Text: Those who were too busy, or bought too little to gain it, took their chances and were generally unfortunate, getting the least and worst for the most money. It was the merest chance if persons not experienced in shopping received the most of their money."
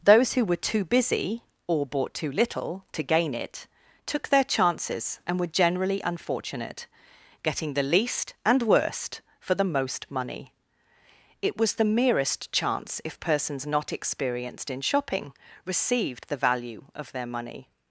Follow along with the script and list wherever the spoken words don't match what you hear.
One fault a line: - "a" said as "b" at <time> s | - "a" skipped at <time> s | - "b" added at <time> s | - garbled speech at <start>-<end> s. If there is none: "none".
- "most" said as "value" at 16.4 s